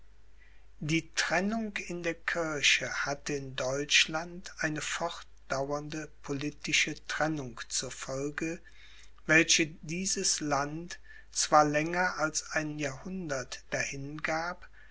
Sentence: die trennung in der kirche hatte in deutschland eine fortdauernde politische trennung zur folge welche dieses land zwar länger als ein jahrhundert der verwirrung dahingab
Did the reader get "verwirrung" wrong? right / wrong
wrong